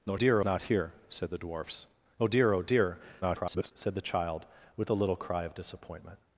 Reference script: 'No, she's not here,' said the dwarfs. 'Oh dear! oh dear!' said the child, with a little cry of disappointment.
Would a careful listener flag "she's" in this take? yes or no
yes